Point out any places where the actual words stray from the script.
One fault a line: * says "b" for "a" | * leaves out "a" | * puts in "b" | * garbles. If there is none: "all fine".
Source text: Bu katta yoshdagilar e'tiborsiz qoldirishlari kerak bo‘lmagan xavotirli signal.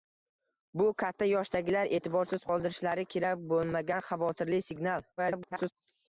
* garbles